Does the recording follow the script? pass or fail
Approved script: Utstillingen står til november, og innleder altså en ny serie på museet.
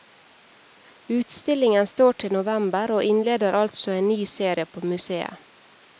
pass